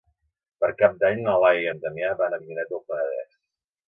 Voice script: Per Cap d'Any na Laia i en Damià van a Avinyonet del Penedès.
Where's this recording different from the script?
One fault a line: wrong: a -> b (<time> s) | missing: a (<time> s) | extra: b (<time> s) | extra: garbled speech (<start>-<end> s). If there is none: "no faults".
no faults